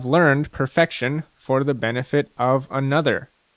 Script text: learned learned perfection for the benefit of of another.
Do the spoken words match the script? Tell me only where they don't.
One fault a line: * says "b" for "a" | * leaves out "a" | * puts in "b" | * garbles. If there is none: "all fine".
* leaves out "learned"
* leaves out "of"